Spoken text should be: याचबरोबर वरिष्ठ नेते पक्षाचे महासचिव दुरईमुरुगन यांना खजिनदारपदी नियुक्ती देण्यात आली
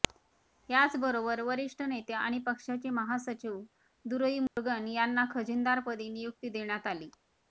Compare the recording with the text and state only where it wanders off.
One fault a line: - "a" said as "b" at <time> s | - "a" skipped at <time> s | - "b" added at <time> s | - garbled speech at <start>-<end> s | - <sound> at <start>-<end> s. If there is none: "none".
- "आणि" added at 2.1 s
- dropout at 4.5-4.6 s